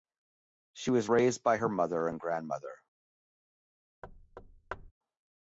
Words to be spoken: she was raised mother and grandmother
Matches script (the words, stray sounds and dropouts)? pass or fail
fail